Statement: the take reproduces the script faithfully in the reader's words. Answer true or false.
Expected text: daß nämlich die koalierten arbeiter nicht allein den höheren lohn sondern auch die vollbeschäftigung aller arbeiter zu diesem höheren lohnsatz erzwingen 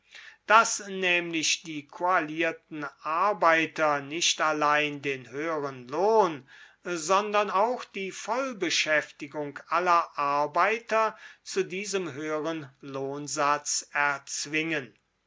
true